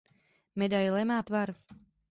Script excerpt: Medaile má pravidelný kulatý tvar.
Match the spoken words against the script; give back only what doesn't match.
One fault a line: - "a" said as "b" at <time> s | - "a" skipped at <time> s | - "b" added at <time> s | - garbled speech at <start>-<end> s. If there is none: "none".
- "pravidelný kulatý" skipped at 1.2 s